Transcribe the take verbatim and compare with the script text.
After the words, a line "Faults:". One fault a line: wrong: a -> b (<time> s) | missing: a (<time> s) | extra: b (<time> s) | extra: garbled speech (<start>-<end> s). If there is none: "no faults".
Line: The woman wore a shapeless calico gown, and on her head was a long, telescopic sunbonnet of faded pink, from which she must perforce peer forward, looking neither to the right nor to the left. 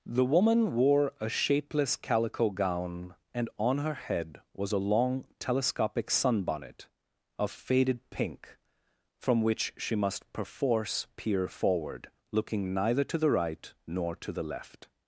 The woman wore a shapeless calico gown, and on her head was a long, telescopic sunbonnet of faded pink, from which she must perforce peer forward, looking neither to the right nor to the left.
Faults:
no faults